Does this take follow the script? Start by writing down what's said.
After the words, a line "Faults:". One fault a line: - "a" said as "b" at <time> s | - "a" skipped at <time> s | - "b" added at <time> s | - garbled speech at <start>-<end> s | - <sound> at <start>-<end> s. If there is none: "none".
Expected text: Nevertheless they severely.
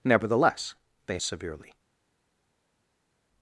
Nevertheless they severely.
Faults:
none